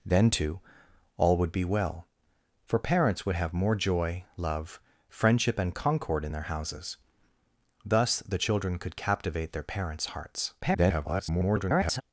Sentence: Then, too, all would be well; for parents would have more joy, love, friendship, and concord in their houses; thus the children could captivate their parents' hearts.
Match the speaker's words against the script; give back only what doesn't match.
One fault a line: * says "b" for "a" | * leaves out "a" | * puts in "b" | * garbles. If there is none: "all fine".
* garbles